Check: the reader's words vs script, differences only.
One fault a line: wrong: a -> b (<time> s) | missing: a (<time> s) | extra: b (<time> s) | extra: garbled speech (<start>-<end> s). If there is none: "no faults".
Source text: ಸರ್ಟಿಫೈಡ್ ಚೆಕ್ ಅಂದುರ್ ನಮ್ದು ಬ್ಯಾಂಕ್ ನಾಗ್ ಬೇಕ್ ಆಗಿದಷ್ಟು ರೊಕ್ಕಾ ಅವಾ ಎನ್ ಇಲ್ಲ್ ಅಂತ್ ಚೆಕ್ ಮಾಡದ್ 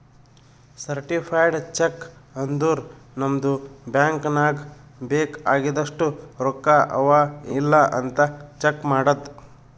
missing: ಎನ್ (7.2 s)